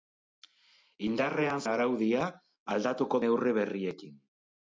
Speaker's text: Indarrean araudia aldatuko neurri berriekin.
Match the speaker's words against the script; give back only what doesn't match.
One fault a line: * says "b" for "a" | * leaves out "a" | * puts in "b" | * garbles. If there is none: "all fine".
all fine